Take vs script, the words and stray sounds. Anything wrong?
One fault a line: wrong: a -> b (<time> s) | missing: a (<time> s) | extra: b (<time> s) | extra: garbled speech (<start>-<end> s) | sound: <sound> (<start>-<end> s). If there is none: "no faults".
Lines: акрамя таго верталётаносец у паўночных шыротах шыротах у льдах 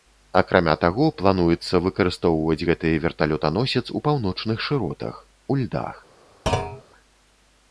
extra: плануецца выкарыстоўваць гэты (1.2 s)
missing: шыротах (5.2 s)
sound: thud (6.5-6.8 s)